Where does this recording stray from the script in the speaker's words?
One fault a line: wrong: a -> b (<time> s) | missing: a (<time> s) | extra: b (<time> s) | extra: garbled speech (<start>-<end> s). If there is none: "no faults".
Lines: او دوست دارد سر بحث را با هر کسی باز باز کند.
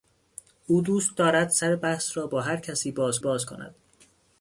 no faults